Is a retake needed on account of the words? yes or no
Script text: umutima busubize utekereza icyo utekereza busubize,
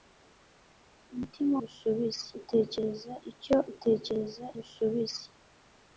no